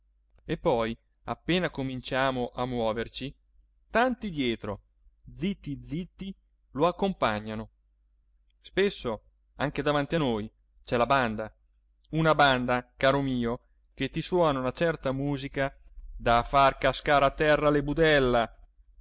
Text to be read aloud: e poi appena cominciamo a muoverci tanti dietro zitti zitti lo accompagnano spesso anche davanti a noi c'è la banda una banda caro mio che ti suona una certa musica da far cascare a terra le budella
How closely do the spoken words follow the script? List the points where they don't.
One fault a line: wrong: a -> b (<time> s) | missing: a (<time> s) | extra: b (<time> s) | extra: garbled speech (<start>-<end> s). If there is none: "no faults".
no faults